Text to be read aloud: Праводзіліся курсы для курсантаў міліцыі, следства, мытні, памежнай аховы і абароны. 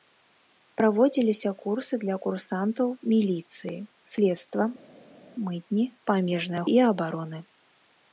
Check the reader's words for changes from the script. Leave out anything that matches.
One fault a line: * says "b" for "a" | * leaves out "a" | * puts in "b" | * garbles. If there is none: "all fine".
* leaves out "аховы"